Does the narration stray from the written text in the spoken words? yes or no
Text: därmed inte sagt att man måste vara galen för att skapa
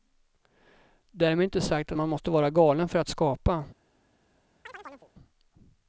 no